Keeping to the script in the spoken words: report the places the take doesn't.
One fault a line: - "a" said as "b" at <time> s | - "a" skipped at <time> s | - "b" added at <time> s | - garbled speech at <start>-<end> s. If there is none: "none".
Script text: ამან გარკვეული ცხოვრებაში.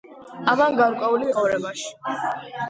none